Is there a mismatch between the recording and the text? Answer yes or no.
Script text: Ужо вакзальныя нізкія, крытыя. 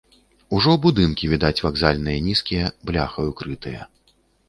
yes